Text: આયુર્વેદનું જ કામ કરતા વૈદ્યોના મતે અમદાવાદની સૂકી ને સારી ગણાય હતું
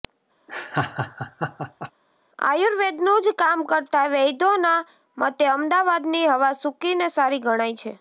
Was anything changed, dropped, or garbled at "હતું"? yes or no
yes